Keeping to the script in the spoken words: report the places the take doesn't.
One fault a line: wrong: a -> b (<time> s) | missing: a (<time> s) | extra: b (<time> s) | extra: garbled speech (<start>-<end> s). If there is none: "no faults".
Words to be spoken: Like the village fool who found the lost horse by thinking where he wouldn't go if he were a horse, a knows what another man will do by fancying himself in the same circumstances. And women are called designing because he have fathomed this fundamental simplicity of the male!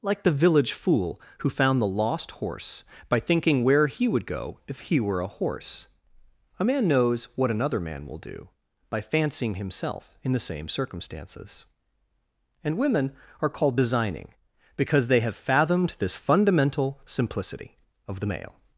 wrong: wouldn't -> would (4.1 s)
extra: man (6.7 s)
wrong: he -> they (15.1 s)